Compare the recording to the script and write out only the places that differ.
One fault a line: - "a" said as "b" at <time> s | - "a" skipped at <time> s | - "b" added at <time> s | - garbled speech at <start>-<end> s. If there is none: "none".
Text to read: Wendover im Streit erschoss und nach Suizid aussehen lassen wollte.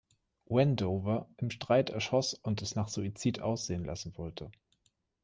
- "es" added at 2.6 s